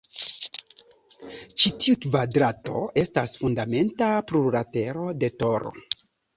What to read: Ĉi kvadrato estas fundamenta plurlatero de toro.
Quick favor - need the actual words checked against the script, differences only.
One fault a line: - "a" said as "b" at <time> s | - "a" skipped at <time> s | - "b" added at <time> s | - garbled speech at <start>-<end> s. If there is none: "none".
- "tiu" added at 1.8 s